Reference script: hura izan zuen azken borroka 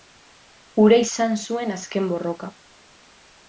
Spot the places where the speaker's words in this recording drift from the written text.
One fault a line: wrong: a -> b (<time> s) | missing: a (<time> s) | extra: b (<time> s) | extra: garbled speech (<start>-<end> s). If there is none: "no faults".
no faults